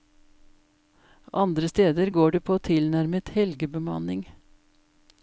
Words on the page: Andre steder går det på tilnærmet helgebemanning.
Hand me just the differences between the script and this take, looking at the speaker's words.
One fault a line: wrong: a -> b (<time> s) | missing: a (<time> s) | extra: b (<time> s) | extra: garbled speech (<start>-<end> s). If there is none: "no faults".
no faults